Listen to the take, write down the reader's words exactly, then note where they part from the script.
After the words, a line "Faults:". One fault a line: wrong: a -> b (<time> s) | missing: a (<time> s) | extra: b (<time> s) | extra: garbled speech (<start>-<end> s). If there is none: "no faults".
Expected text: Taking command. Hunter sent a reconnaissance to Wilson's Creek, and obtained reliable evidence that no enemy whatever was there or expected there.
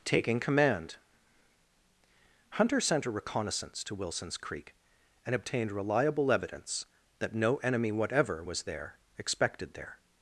Taking command. Hunter sent a reconnaissance to Wilson's Creek, and obtained reliable evidence that no enemy whatever was there expected there.
Faults:
missing: or (9.0 s)